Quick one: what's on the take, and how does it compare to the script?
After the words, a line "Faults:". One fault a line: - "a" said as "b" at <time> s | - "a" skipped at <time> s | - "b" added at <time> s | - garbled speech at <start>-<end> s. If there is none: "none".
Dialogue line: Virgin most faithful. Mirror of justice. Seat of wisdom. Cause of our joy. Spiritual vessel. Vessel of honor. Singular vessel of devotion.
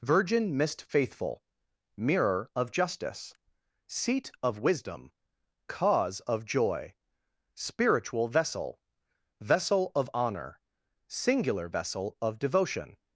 Virgin mist faithful. Mirror of justice. Seat of wisdom. Cause of joy. Spiritual vessel. Vessel of honor. Singular vessel of devotion.
Faults:
- "most" said as "mist" at 0.6 s
- "our" skipped at 6.4 s